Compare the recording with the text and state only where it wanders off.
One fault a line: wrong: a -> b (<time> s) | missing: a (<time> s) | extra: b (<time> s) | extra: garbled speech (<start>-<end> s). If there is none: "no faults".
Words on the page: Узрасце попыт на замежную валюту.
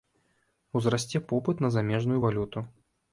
no faults